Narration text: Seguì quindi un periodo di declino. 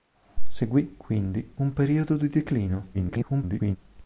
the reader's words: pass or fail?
fail